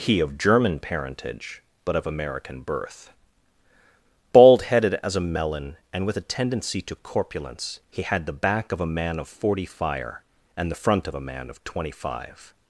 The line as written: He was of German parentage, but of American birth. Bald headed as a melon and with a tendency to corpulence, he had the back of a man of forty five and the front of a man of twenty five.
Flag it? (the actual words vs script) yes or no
yes